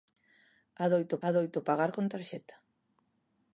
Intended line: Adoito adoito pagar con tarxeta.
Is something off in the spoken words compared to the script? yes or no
no